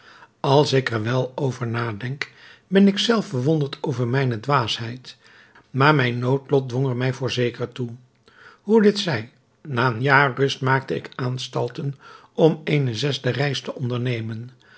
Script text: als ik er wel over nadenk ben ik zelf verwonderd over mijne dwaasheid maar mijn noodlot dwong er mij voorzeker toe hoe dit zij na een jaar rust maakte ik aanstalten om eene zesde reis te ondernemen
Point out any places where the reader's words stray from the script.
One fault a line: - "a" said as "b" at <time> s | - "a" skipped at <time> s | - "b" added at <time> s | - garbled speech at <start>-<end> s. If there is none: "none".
none